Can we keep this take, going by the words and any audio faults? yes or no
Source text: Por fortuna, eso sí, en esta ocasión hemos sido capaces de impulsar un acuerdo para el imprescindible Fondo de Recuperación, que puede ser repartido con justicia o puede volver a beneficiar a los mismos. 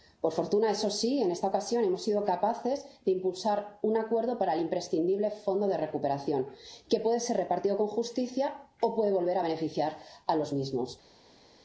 yes